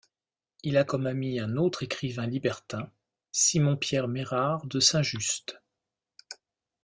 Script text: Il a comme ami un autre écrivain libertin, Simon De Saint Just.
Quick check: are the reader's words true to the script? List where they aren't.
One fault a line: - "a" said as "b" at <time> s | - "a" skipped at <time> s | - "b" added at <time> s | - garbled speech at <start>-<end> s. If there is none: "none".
- "Pierre Mérard" added at 3.8 s